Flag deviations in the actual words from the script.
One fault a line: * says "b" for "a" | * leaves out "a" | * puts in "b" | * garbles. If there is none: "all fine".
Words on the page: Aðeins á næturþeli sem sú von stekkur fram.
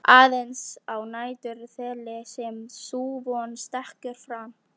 all fine